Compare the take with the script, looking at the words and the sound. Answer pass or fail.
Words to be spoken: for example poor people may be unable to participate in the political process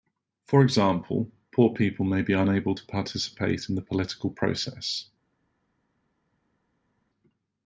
pass